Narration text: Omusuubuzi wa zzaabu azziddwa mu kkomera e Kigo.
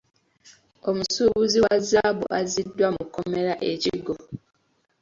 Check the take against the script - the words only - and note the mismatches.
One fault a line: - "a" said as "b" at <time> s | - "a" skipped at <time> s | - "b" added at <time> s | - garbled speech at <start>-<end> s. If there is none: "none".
none